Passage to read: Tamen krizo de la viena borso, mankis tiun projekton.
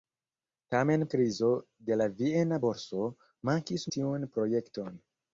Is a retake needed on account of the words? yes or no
no